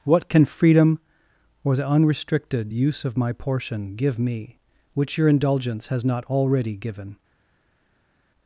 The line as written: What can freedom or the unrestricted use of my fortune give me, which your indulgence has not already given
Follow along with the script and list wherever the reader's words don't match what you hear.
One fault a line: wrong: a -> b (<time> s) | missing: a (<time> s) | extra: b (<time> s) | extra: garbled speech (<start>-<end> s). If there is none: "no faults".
wrong: fortune -> portion (3.3 s)